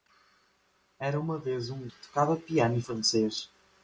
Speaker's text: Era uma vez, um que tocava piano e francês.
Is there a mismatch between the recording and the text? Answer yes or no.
no